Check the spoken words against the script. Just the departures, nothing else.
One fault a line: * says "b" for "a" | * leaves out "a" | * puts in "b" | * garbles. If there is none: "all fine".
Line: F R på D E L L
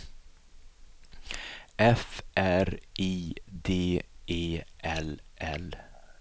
* says "I" for "på"